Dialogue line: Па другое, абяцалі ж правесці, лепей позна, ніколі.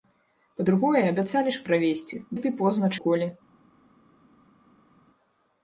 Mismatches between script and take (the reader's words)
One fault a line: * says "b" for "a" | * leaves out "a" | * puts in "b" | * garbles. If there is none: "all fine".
all fine